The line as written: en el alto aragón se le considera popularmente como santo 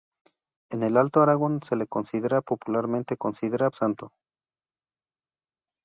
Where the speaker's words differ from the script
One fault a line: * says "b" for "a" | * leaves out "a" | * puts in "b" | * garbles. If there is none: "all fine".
* says "considera" for "como"